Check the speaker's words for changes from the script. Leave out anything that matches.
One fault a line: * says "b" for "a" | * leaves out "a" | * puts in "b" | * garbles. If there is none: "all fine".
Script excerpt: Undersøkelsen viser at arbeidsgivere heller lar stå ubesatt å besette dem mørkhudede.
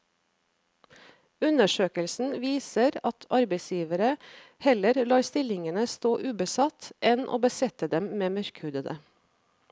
* puts in "stillingene"
* puts in "enn"
* puts in "med"